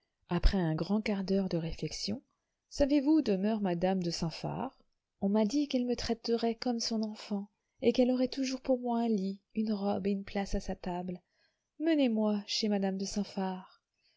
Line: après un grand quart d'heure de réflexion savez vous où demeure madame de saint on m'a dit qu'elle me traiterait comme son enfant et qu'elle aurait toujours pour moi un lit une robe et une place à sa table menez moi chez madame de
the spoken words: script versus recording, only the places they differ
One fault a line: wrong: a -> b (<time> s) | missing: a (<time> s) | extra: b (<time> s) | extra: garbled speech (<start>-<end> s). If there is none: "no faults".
extra: phar (4.3 s)